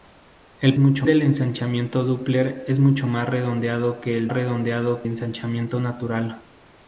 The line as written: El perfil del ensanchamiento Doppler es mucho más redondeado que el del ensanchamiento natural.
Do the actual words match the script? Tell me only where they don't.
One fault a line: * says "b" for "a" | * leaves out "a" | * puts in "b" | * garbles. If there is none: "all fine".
* says "mucho" for "perfil"
* says "redondeado" for "del"